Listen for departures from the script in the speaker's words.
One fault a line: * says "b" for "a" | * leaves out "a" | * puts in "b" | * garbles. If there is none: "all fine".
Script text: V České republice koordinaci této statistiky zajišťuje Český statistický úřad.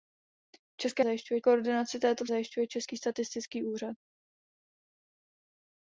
* says "zajišťuje" for "republice"
* leaves out "statistiky"